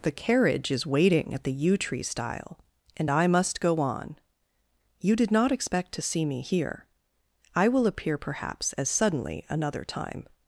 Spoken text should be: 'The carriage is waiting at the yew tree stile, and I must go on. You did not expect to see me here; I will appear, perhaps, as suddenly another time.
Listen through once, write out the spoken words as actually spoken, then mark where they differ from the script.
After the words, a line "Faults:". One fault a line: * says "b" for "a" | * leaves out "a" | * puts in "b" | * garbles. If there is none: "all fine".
'The carriage is waiting at the yew tree stile, and I must go on. You did not expect to see me here; I will appear, perhaps, as suddenly another time.
Faults:
all fine